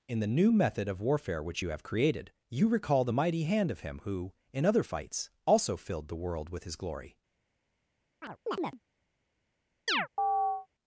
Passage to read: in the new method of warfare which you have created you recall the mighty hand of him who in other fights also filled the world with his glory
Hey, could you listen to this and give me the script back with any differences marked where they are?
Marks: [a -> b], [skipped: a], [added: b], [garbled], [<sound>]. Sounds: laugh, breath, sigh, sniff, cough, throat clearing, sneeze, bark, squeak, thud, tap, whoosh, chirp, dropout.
in the new method of warfare which you have created you recall the mighty hand of him who in other fights also filled the world with his glory [chirp] [chirp]